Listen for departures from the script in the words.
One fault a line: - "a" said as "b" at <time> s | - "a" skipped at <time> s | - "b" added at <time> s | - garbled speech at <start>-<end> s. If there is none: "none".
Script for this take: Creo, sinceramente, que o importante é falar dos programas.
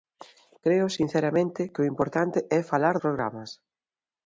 - "dos" skipped at 3.0 s